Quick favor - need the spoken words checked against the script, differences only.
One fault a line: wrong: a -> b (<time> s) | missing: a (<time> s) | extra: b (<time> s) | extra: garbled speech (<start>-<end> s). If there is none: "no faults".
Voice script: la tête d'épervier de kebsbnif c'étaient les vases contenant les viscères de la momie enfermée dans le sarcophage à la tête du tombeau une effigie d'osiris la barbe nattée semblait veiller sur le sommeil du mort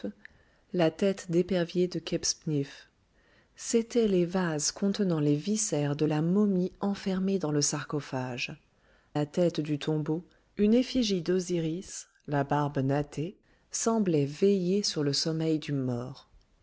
missing: à (8.6 s)